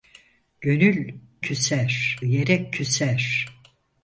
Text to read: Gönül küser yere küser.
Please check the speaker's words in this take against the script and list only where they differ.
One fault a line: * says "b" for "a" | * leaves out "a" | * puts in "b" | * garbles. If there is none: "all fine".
all fine